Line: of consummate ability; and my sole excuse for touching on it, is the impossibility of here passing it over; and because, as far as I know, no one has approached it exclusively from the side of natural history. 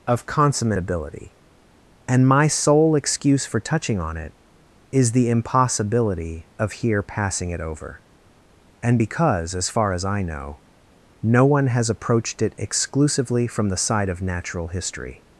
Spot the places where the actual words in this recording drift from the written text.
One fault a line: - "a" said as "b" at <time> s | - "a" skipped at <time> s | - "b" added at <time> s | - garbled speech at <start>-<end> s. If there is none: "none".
none